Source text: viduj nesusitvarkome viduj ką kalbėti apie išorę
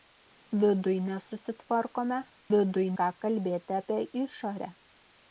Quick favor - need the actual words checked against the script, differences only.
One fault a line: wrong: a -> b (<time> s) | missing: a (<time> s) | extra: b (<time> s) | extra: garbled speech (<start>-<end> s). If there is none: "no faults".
no faults